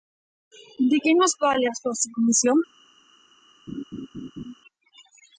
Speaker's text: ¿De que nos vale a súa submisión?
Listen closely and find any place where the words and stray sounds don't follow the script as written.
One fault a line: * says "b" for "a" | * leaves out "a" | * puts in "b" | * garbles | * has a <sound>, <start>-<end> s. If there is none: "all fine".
* has a laugh, 3.7-4.5 s